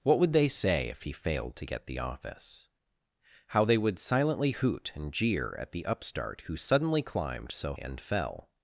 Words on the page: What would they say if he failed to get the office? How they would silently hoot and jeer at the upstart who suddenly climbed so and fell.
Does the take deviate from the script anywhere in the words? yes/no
no